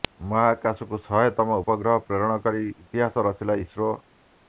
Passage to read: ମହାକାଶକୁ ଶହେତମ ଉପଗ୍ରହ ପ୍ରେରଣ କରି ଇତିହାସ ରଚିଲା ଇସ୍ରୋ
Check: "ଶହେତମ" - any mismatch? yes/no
no